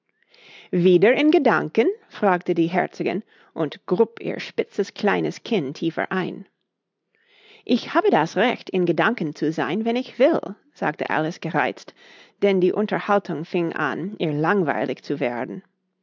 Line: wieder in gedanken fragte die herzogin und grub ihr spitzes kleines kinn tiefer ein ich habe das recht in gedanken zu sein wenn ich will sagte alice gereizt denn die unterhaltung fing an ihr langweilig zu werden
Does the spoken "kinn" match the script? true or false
true